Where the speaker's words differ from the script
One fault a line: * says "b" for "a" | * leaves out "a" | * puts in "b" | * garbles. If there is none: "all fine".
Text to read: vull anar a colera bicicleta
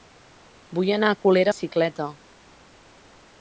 all fine